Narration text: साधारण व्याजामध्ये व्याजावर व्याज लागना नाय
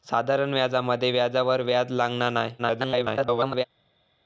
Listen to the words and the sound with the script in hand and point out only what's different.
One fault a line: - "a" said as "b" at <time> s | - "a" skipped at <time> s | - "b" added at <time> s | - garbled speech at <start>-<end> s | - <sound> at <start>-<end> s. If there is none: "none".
- garbled speech at 2.6-3.6 s